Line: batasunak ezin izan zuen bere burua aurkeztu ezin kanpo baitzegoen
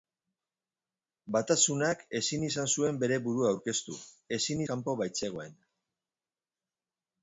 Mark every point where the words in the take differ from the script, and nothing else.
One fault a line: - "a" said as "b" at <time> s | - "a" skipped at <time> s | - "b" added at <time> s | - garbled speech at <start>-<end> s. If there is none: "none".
none